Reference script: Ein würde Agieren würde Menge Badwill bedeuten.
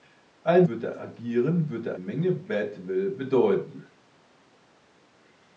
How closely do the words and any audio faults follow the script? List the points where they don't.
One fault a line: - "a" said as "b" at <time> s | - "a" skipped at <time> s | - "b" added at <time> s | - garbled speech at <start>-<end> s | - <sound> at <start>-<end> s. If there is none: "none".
none